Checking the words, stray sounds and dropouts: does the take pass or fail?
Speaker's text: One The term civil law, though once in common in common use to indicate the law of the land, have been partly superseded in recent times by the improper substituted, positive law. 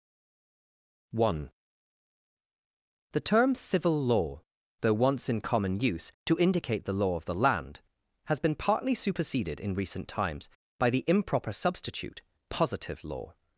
fail